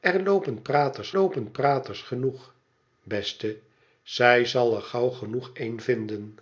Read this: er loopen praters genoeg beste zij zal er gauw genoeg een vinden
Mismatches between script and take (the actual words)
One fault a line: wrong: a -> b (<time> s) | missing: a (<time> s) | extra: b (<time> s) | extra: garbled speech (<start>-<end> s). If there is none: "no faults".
extra: loopen praters (1.1 s)